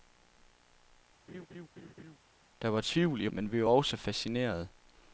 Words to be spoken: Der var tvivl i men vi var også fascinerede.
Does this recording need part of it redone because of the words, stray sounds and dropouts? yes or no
yes